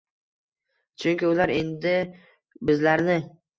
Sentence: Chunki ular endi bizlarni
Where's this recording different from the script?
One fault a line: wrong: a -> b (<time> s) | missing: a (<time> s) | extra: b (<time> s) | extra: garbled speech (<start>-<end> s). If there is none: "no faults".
no faults